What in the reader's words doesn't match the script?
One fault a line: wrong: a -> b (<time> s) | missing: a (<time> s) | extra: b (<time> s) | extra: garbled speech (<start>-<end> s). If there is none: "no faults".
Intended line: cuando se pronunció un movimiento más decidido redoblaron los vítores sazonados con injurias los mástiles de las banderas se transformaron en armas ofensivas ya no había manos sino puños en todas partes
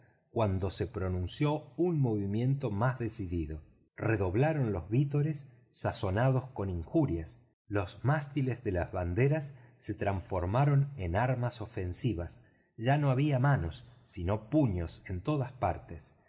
no faults